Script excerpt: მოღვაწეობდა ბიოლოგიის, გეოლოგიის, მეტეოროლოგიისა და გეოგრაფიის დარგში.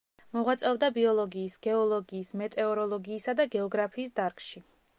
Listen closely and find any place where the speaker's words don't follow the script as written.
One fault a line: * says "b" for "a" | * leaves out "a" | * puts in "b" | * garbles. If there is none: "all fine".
all fine